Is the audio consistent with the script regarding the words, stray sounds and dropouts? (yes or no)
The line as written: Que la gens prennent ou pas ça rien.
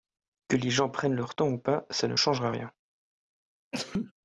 no